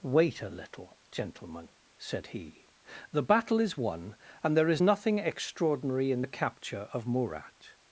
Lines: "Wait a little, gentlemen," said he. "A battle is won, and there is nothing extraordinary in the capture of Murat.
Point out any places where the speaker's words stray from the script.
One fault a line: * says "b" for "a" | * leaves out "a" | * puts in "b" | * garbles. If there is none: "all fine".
* says "The" for "A"